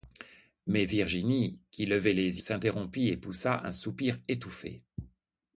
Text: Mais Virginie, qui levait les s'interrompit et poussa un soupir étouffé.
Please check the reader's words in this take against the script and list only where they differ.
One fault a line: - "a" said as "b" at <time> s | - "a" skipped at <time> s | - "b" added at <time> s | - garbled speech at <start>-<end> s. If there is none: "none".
none